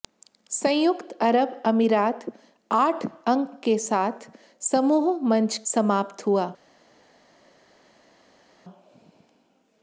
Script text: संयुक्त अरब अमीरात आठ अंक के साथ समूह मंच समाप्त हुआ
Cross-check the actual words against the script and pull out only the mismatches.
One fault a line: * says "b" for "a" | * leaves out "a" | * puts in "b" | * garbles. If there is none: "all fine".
all fine